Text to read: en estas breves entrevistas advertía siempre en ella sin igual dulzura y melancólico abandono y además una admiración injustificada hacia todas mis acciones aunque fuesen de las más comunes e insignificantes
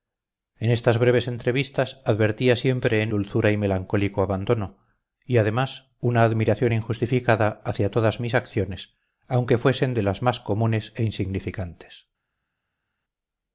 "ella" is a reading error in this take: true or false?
true